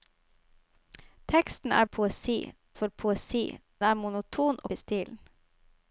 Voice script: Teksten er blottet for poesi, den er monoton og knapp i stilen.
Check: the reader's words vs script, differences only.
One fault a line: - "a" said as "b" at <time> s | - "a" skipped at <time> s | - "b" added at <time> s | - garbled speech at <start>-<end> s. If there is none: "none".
- "blottet" said as "poesi" at 1.8 s
- "den" skipped at 3.6 s
- "knapp" skipped at 4.7 s